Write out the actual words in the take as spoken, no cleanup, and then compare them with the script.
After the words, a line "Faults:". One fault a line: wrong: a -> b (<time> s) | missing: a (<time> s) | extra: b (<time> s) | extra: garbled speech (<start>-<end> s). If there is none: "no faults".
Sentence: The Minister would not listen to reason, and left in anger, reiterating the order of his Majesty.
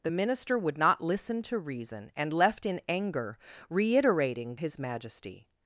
The Minister would not listen to reason, and left in anger, reiterating his Majesty.
Faults:
missing: the order of (4.6 s)